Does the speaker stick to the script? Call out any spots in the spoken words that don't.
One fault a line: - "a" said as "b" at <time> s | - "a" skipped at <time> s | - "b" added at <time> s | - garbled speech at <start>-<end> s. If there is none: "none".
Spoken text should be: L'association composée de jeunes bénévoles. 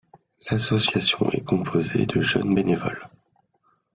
- "est" added at 1.3 s